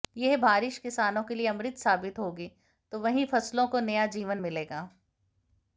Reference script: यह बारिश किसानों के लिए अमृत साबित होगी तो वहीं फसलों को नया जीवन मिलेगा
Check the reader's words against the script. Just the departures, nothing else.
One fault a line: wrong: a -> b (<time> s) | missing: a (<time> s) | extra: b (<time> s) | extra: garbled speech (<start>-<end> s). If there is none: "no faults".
no faults